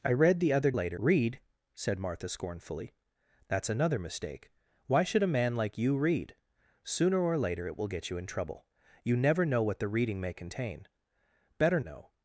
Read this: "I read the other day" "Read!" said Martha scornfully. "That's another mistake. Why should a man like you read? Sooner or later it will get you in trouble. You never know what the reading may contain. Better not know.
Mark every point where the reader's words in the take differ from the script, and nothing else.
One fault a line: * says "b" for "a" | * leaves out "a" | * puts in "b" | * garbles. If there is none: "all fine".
* says "later" for "day"
* leaves out "not"